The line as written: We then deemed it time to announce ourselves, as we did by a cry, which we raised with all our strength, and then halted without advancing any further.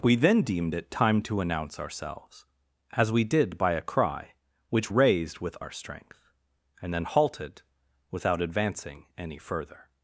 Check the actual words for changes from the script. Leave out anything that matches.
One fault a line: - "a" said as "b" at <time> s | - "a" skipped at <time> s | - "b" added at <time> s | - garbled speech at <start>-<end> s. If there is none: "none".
- "we" skipped at 4.9 s
- "all" skipped at 5.6 s